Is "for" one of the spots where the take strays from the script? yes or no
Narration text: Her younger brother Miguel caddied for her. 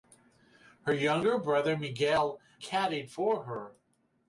no